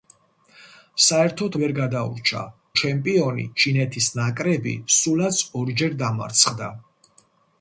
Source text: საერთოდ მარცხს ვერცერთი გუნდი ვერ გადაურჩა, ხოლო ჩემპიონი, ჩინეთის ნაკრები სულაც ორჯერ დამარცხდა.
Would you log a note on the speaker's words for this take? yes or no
yes